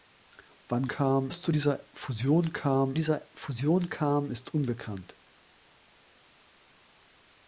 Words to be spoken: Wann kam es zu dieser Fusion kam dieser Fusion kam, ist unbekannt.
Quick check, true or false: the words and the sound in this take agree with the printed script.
true